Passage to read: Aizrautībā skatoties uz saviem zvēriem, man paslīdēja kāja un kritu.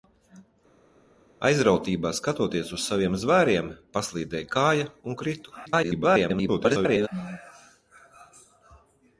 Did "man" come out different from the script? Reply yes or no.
yes